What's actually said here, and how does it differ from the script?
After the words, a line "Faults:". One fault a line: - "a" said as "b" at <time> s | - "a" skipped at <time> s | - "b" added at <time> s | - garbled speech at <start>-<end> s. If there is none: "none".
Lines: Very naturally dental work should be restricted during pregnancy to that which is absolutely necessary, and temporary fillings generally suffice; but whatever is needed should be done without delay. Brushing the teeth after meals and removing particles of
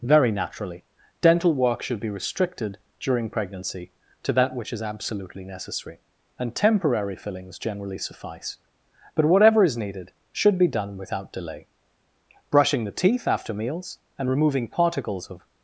Very naturally dental work should be restricted during pregnancy to that which is absolutely necessary, and temporary fillings generally suffice; but whatever is needed should be done without delay. Brushing the teeth after meals and removing particles of
Faults:
none